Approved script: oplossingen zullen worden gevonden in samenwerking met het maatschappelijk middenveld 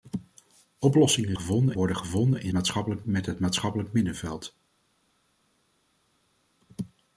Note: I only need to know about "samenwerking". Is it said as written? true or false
false